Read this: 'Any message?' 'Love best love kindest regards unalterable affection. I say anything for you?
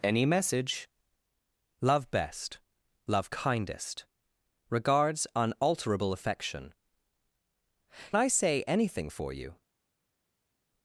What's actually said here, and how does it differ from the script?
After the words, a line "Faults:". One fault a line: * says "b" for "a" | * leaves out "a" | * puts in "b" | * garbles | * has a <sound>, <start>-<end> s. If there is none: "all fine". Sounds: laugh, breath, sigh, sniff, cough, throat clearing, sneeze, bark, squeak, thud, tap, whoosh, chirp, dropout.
'Any message?' 'Love best love kindest regards unalterable affection. I say anything for you?
Faults:
all fine